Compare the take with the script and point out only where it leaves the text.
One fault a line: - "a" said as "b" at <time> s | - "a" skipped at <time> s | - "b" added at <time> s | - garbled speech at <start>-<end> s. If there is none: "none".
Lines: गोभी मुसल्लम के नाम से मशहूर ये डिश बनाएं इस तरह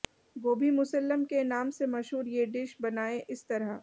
none